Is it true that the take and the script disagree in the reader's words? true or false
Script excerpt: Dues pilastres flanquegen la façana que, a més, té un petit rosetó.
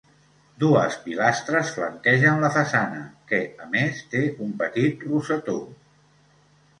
false